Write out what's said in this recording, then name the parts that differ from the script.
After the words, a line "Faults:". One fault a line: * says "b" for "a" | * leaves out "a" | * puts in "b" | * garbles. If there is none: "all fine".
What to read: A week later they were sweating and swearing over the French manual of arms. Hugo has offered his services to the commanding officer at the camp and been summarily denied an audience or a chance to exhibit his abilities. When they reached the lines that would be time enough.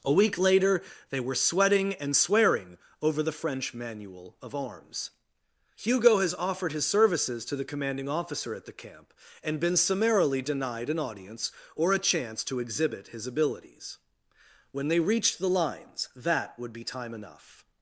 A week later they were sweating and swearing over the French manual of arms. Hugo has offered his services to the commanding officer at the camp and been summarily denied an audience or a chance to exhibit his abilities. When they reached the lines that would be time enough.
Faults:
all fine